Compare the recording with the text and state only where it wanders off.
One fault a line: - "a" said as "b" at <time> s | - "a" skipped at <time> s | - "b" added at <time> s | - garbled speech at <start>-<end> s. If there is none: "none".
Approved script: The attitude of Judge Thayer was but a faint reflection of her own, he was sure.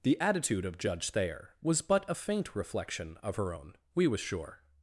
- "he" said as "we" at 3.9 s